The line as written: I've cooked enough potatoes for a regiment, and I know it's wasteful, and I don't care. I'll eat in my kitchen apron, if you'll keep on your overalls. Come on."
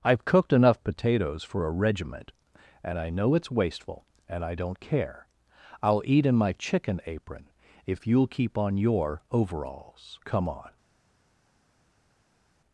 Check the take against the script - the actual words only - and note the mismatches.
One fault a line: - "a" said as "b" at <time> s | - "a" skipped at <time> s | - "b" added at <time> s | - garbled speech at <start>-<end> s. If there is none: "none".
- "kitchen" said as "chicken" at 6.5 s